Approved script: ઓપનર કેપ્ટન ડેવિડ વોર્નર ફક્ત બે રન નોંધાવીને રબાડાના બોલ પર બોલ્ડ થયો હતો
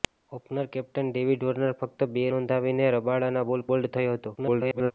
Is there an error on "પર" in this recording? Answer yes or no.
yes